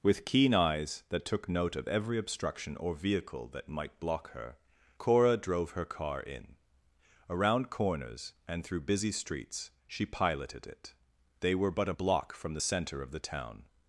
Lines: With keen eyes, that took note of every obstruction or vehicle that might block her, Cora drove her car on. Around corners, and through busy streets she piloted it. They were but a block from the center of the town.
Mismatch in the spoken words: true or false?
true